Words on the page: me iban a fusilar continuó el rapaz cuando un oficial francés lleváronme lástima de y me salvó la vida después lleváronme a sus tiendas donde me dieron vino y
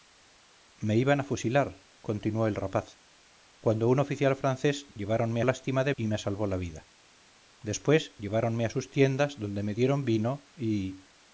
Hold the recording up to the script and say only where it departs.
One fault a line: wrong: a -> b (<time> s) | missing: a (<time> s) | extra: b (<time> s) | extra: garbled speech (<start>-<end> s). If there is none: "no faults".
no faults